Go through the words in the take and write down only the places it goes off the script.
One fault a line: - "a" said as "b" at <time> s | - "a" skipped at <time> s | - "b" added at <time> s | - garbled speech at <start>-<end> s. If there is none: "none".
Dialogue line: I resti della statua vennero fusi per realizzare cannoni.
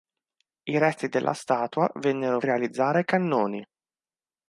- "fusi per" skipped at 2.4 s